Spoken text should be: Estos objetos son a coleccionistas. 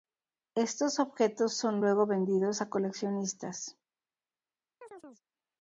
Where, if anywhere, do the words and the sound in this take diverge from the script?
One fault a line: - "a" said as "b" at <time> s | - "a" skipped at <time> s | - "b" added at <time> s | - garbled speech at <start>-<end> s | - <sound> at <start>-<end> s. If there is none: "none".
- "luego vendidos" added at 1.8 s
- chirp at 4.8-5.2 s